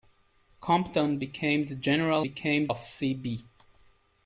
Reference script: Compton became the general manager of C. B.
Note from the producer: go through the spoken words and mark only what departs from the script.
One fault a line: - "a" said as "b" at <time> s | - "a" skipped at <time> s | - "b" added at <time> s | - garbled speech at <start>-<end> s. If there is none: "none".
- "manager" said as "became" at 2.2 s